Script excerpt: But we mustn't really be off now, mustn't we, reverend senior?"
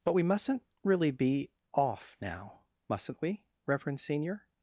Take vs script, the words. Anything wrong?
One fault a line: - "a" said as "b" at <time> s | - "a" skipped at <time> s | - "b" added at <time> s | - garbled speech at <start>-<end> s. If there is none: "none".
none